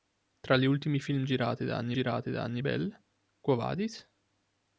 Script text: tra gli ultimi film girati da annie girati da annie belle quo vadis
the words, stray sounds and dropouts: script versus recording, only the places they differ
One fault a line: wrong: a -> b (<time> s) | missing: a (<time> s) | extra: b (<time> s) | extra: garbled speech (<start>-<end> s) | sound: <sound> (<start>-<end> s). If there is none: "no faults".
no faults